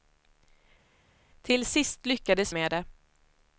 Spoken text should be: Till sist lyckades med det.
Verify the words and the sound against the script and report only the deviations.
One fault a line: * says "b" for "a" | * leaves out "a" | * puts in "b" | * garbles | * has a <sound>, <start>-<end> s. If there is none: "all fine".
all fine